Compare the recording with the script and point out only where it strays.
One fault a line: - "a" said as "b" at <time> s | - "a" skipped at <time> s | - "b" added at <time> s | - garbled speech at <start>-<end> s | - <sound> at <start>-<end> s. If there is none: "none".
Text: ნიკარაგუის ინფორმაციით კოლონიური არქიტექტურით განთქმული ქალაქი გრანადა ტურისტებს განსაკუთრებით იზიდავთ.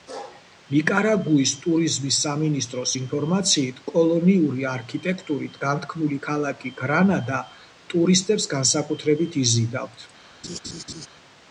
- "ტურიზმის სამინისტროს" added at 1.6 s
- laugh at 10.4-11.1 s